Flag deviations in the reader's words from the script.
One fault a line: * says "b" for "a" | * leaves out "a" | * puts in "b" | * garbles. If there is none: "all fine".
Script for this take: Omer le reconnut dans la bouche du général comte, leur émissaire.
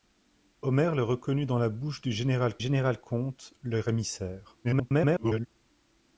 * puts in "général"
* garbles